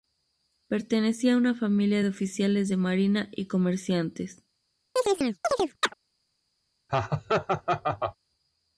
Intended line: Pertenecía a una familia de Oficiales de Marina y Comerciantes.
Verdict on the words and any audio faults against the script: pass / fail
fail